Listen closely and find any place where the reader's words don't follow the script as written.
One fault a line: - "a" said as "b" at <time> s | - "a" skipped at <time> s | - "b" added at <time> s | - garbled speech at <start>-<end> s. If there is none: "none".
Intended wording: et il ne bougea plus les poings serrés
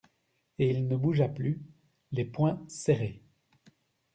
none